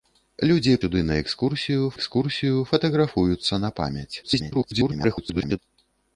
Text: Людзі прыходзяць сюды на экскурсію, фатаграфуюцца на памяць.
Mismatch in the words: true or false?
true